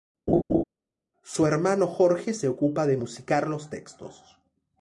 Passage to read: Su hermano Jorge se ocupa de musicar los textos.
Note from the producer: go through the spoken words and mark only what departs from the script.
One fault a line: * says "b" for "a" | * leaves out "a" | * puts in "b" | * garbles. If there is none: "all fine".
all fine